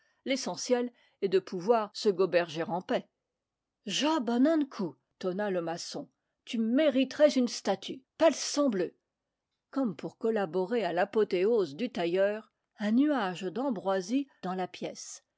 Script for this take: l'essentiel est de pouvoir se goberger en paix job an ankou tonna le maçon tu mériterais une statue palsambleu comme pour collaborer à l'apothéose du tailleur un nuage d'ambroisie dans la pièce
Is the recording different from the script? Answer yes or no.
no